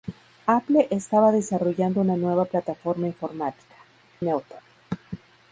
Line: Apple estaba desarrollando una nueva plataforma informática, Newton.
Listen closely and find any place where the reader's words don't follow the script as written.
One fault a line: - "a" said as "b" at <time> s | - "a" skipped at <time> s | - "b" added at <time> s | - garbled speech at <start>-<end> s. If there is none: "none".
none